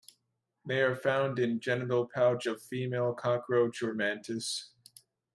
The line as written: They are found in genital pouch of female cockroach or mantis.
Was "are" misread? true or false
false